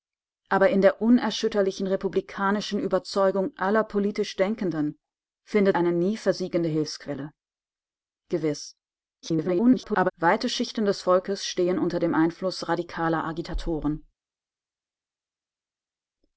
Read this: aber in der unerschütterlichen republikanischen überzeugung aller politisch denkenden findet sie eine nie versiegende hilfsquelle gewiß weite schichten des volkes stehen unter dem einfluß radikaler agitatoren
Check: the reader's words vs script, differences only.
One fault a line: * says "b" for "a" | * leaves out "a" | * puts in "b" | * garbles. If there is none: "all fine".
* leaves out "sie"
* garbles